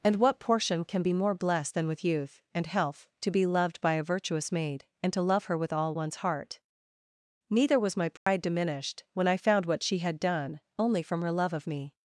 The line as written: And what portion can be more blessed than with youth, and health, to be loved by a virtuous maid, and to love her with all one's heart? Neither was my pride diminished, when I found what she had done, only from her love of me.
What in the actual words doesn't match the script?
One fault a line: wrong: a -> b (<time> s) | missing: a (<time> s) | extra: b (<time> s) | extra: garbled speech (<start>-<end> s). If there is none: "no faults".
no faults